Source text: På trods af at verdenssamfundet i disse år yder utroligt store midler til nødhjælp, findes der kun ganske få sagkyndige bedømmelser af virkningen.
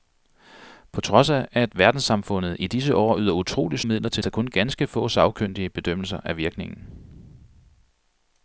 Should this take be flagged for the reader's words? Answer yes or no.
yes